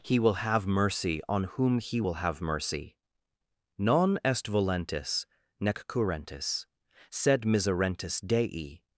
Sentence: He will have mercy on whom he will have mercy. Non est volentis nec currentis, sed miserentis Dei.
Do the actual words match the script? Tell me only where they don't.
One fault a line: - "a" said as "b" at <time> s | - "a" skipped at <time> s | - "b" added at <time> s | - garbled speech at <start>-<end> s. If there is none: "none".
none